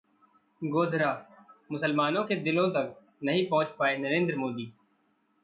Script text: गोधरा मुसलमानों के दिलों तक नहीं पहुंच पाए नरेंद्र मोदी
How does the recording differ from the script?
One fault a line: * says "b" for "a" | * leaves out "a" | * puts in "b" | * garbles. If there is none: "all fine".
all fine